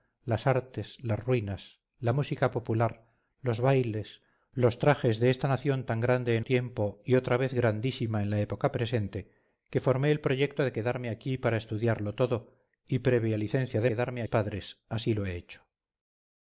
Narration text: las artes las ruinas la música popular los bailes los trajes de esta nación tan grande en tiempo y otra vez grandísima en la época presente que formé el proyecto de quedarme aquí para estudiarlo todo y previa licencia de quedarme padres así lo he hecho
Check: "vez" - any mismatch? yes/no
no